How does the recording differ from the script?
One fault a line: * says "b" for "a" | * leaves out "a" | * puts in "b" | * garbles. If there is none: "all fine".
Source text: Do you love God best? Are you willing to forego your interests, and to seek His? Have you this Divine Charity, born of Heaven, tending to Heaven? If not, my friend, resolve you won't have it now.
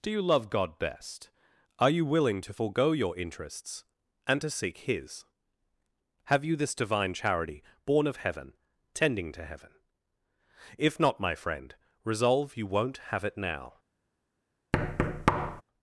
all fine